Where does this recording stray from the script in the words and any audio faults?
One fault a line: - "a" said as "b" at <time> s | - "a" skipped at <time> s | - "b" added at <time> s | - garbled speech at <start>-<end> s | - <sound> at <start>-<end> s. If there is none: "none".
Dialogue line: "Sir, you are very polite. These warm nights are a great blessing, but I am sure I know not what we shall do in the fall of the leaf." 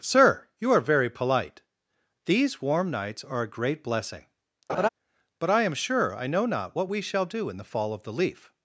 - laugh at 4.7-4.9 s